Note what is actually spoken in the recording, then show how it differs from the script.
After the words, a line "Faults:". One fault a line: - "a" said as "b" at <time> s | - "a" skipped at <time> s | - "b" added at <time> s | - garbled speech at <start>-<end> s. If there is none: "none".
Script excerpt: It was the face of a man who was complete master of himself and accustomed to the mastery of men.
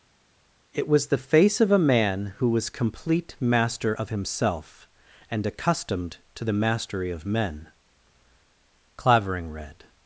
It was the face of a man who was complete master of himself and accustomed to the mastery of men. Clavering read
Faults:
- "Clavering read" added at 9.0 s